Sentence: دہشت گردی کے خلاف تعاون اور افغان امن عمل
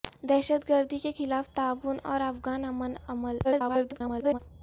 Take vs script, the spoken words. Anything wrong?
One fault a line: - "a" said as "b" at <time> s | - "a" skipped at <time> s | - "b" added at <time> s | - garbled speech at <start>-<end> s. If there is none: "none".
- garbled speech at 3.4-4.4 s